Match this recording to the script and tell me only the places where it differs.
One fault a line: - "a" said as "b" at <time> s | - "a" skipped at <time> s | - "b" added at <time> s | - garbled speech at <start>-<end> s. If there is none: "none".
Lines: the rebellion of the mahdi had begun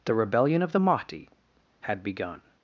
none